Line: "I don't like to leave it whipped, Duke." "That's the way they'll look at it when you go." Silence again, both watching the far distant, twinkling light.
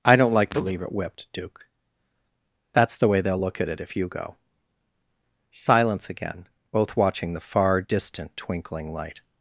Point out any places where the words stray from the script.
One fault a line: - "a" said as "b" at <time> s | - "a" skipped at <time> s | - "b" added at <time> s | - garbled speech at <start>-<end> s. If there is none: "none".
- "when" said as "if" at 3.8 s